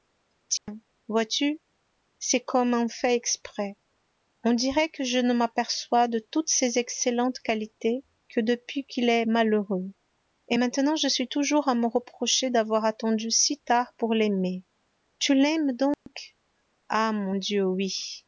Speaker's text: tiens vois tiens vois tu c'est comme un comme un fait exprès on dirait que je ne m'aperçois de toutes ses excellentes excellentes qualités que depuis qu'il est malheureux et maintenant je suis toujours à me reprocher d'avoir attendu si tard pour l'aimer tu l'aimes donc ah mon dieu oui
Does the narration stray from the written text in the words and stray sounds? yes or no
yes